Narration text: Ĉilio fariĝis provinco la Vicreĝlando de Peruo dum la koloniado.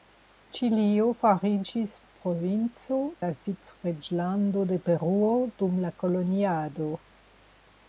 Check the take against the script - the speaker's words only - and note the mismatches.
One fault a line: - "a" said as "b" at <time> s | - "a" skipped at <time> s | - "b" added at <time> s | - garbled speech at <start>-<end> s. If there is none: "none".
none